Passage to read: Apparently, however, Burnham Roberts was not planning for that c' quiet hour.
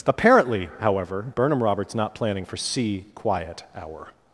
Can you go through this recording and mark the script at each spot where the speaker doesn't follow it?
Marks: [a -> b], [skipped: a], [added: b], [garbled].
Apparently, however, Burnham Roberts [skipped: was] not planning for [skipped: that] c' quiet hour.